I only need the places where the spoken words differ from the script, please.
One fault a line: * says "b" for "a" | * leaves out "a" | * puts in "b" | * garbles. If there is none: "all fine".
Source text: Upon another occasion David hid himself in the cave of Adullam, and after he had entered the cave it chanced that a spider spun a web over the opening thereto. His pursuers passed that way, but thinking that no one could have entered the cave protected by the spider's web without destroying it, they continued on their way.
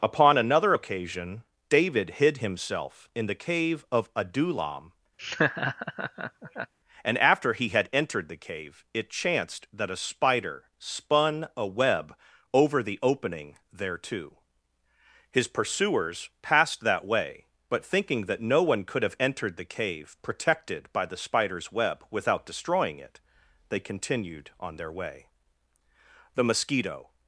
* puts in "The mosquito"